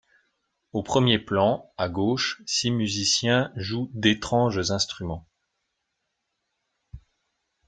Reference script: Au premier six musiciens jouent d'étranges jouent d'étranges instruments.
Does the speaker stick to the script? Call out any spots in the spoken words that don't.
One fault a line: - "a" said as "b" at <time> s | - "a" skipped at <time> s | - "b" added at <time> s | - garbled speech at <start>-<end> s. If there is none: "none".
- "plan à gauche" added at 1.2 s
- "jouent d'étranges" skipped at 4.7 s